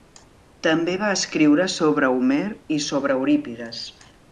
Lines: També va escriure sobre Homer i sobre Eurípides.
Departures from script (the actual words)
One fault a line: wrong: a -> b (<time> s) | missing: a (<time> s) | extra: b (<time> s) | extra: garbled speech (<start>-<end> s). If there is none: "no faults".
no faults